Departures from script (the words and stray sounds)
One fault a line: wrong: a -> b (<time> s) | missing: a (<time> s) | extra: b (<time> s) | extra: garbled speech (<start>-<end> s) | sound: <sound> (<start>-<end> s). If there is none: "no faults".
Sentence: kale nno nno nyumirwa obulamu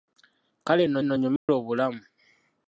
sound: dropout (1.4-1.5 s)